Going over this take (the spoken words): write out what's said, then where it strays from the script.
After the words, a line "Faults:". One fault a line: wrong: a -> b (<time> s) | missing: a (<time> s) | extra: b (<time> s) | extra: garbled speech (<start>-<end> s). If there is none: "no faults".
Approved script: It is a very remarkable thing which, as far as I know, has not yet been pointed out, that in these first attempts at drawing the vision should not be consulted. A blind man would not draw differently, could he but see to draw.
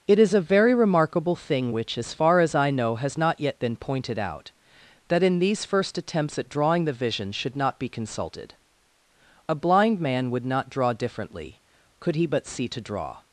It is a very remarkable thing which, as far as I know, has not yet been pointed out, that in these first attempts at drawing the vision should not be consulted. A blind man would not draw differently, could he but see to draw.
Faults:
no faults